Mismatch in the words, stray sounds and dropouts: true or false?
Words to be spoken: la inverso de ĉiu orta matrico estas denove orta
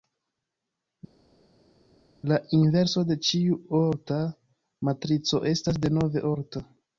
false